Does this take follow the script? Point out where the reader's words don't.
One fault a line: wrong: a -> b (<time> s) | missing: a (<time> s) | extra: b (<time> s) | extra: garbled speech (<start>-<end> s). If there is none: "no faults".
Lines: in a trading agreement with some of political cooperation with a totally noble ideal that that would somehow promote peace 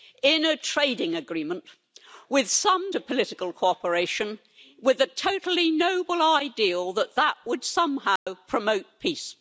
no faults